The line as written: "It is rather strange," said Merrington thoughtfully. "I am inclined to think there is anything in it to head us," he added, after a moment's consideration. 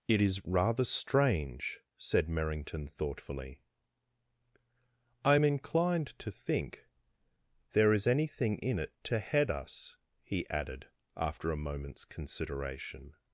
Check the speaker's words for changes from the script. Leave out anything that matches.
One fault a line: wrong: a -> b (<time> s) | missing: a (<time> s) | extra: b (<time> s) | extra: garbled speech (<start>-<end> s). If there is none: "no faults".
no faults